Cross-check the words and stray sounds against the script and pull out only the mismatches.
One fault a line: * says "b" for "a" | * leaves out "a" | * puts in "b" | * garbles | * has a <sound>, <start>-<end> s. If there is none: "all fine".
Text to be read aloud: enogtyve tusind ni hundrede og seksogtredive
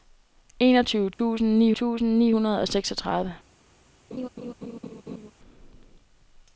* has a dropout, 1.1-1.2 s
* puts in "tusind ni"
* has a laugh, 4.1-5.3 s